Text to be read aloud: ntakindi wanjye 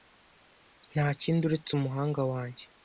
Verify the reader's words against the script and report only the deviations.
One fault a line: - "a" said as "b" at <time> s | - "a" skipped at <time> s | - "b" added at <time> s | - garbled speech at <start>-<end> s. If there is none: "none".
- "uretse umuhanga" added at 1.4 s